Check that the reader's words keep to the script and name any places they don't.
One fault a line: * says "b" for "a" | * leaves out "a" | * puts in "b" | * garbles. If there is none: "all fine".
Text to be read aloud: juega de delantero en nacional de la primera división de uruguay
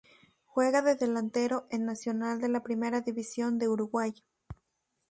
all fine